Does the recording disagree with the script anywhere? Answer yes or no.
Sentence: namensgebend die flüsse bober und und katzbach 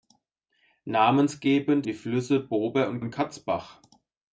no